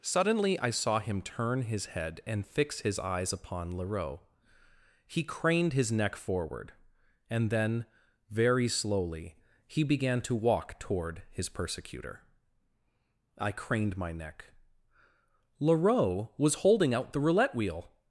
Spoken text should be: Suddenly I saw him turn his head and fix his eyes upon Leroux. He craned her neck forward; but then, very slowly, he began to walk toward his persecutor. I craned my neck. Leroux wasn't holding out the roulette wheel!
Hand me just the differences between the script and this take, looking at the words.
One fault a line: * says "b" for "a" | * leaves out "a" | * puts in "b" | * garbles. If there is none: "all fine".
* says "his" for "her"
* says "and" for "but"
* says "was" for "wasn't"